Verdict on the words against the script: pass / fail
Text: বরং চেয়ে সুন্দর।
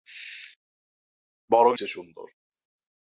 pass